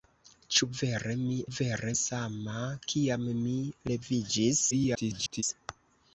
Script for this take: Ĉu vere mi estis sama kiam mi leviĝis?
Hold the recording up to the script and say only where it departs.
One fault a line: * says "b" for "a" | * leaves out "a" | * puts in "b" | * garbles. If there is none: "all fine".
* says "vere" for "estis"
* garbles